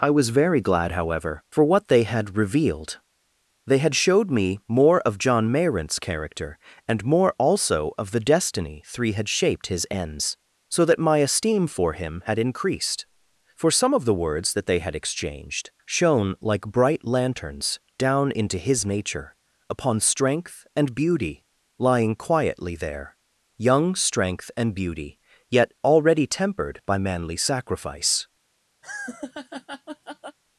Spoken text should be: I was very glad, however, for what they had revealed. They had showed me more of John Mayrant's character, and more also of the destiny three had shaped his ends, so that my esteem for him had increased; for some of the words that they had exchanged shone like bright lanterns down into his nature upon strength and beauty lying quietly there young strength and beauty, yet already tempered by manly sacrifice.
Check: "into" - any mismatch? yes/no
no